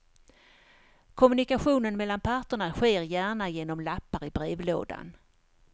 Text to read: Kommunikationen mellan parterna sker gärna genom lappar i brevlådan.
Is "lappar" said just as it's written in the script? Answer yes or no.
yes